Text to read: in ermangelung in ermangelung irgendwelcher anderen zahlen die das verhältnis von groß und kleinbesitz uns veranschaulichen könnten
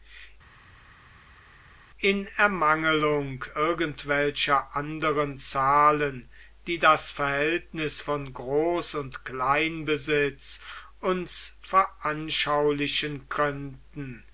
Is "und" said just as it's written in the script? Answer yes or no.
yes